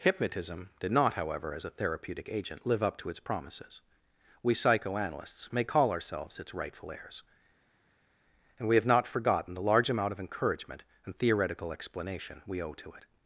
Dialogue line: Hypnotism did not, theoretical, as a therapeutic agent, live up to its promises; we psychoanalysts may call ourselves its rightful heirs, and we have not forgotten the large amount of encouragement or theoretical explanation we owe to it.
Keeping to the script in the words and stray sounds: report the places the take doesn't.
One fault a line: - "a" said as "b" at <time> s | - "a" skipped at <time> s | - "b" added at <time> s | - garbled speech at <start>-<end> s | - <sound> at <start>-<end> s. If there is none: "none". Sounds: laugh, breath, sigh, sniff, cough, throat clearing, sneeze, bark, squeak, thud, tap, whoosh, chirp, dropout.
- "theoretical" said as "however" at 1.1 s
- "or" said as "and" at 11.0 s